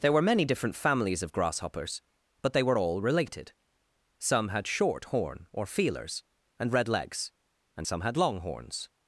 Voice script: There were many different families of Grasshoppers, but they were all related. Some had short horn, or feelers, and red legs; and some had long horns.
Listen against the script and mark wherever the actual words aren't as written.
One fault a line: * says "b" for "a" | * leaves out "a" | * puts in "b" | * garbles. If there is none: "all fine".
all fine